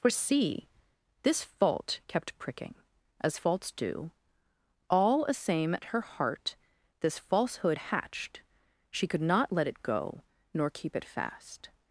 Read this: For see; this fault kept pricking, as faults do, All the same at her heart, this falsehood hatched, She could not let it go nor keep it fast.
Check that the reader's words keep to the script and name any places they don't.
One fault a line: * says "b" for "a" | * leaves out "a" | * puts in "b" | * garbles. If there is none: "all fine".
* says "a" for "the"